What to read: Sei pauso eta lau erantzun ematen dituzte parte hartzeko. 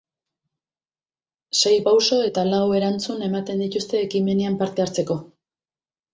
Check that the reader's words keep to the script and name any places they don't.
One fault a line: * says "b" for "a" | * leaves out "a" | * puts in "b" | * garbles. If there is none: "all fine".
* puts in "ekimenean"